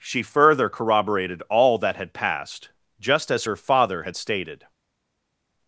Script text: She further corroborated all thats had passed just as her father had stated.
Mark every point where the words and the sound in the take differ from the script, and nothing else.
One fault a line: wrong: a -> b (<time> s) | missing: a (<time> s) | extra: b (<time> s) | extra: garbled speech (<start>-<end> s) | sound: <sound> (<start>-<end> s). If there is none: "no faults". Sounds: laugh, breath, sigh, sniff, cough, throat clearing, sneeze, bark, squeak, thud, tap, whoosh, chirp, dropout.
wrong: thats -> that (1.8 s)